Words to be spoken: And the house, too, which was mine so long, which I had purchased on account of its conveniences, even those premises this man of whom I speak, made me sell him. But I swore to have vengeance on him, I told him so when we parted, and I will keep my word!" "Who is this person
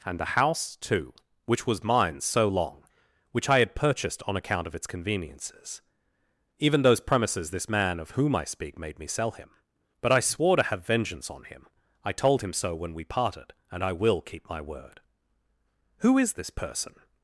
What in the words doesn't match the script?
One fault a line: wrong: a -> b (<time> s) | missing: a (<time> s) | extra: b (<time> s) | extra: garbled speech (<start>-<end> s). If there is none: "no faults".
no faults